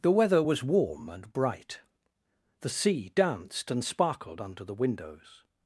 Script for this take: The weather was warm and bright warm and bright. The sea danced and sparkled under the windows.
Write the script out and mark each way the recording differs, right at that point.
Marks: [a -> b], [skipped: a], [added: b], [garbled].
The weather was warm and bright [skipped: warm and bright.] The sea danced and sparkled under the windows.